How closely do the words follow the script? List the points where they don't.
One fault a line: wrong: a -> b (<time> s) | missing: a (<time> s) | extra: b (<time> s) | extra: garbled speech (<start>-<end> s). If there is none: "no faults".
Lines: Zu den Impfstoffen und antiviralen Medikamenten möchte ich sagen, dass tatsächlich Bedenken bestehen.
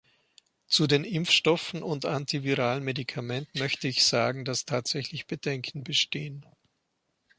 no faults